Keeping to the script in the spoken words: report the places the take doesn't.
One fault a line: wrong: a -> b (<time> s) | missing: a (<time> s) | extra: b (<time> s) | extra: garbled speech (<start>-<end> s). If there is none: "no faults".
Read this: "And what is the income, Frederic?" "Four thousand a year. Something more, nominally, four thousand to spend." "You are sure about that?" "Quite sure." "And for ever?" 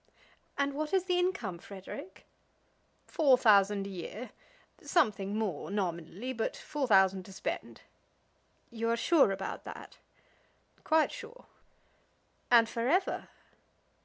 extra: but (6.3 s)